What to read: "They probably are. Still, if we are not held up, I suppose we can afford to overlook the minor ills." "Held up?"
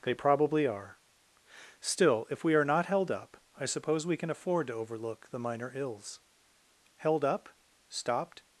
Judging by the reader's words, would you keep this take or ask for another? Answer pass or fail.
fail